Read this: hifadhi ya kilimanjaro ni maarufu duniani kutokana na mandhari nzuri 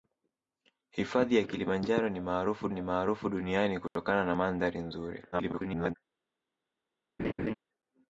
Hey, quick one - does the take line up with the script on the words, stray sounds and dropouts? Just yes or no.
no